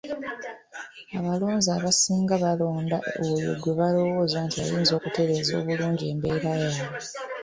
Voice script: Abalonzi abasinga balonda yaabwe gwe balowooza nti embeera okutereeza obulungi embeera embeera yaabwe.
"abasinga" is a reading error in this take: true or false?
false